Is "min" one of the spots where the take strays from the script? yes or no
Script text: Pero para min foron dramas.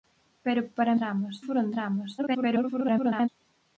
yes